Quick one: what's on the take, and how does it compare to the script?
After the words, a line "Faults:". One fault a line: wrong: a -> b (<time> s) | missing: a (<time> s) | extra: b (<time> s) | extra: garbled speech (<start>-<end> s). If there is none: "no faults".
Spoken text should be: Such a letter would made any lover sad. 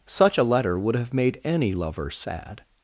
Such a letter would have made any lover sad.
Faults:
extra: have (0.9 s)